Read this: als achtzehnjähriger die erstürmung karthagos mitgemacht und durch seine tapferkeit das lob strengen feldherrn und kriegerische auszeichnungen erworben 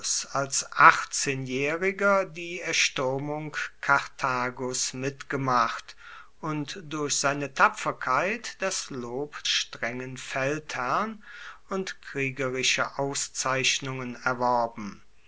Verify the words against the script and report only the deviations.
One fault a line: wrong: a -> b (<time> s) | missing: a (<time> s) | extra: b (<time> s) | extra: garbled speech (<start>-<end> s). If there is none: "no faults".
no faults